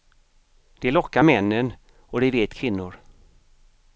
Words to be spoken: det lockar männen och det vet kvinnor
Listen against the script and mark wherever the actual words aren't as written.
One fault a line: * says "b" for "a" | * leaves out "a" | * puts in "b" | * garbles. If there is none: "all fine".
all fine